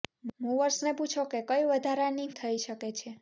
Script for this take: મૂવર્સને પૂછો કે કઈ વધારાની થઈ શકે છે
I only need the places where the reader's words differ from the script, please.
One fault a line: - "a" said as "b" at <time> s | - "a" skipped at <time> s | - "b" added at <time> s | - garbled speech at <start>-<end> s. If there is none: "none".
none